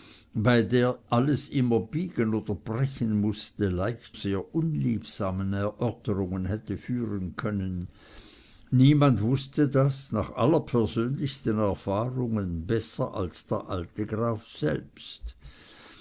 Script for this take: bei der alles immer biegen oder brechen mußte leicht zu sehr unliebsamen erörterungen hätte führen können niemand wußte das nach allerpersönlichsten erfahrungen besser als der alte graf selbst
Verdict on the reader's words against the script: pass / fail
fail